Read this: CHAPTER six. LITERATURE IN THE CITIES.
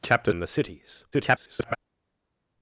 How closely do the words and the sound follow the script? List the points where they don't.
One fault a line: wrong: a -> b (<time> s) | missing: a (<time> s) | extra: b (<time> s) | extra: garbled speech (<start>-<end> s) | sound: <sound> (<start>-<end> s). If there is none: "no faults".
missing: six LITERATURE (0.3 s)
extra: garbled speech (1.1-1.8 s)